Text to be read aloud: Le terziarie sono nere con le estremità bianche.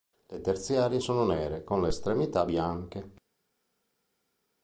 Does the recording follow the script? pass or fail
pass